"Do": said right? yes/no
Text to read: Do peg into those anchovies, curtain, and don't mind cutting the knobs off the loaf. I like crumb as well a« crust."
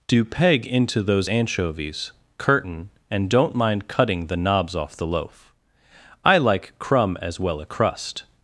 yes